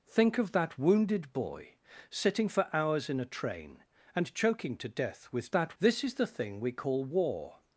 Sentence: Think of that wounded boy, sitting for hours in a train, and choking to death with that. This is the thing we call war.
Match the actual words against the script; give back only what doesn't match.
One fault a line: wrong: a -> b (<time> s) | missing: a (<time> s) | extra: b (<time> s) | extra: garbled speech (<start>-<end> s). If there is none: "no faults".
no faults